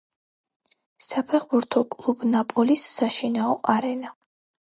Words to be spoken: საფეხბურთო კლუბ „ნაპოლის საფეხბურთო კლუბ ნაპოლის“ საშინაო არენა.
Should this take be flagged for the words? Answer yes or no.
yes